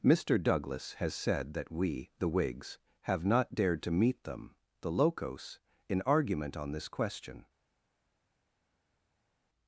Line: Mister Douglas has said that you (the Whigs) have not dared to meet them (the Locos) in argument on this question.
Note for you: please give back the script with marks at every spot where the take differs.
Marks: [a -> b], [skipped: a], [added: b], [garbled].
Mister Douglas has said that [you -> we] (the Whigs) have not dared to meet them (the Locos) in argument on this question.